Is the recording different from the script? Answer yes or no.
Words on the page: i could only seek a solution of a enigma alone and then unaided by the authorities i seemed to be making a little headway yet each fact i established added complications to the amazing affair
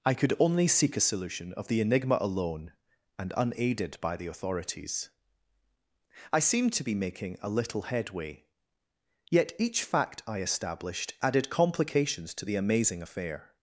yes